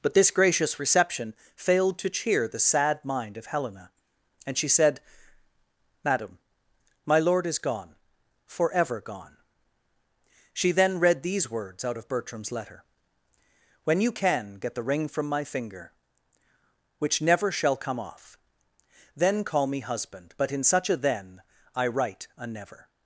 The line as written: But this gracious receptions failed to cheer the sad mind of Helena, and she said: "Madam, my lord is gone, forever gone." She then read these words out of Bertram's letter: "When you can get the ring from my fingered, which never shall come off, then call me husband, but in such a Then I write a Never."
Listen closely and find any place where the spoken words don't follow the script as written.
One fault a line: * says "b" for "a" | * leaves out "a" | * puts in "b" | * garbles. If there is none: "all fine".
* says "reception" for "receptions"
* says "finger" for "fingered"